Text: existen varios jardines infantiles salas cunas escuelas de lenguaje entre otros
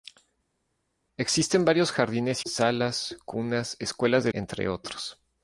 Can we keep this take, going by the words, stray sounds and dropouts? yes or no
no